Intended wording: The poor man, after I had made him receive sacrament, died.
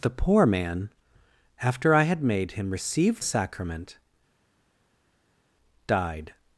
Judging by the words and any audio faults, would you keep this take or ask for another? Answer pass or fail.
pass